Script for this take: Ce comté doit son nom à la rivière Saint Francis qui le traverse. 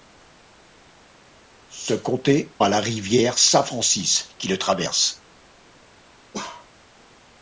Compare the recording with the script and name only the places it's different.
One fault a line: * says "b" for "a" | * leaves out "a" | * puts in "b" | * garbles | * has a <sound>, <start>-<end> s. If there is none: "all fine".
* leaves out "doit son nom"
* has a bark, 6.3-6.7 s